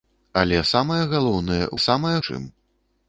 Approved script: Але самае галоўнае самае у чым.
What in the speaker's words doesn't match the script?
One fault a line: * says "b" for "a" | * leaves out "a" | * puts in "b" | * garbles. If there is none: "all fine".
all fine